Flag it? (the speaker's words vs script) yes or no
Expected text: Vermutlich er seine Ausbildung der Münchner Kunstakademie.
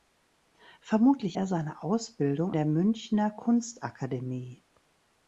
no